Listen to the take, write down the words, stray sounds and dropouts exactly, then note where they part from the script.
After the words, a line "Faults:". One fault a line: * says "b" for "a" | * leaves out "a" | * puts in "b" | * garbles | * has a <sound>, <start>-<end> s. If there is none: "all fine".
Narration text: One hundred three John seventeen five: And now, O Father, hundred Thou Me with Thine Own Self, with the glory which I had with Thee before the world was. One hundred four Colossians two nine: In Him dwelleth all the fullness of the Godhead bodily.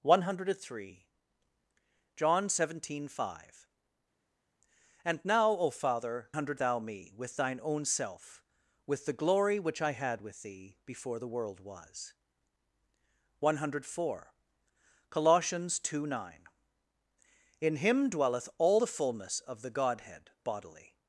One hundred three John seventeen five: And now, O Father, hundred Thou Me with Thine Own Self, with the glory which I had with Thee before the world was. One hundred four Colossians two nine: In Him dwelleth all the fullness of the Godhead bodily.
Faults:
all fine